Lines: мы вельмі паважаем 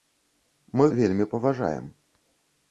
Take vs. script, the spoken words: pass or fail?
pass